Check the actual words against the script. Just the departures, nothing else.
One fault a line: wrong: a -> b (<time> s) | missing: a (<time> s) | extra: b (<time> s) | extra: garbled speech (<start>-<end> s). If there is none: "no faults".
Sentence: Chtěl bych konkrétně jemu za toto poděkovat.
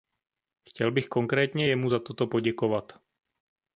no faults